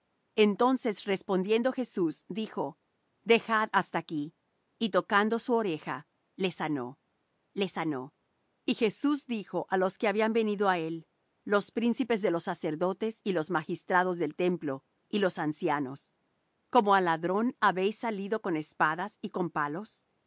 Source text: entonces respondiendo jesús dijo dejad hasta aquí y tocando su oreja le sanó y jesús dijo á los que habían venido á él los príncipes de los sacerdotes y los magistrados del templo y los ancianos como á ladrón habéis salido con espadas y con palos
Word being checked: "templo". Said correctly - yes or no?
yes